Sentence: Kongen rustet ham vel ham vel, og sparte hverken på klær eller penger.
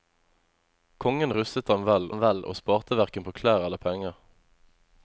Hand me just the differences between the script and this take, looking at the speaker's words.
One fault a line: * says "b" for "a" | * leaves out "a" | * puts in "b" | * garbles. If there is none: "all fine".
all fine